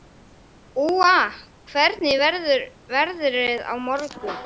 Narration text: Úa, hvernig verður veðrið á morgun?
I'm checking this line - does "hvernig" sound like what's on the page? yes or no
yes